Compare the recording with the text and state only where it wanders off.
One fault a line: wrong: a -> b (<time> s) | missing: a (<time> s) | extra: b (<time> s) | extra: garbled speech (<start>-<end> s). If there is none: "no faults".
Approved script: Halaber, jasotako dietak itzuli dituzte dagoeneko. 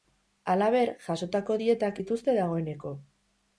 missing: itzuli (2.0 s)